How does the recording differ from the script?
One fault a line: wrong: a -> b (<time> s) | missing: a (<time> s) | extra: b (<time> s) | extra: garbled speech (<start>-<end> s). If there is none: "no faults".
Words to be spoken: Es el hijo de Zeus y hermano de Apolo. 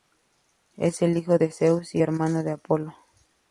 no faults